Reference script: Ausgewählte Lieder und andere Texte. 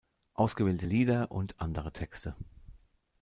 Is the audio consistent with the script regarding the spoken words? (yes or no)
yes